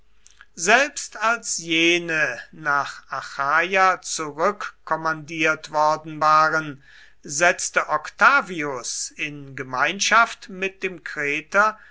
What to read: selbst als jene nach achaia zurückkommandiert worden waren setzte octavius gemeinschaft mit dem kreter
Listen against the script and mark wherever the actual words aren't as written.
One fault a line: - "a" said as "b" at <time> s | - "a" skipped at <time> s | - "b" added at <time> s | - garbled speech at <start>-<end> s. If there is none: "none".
- "in" added at 9.2 s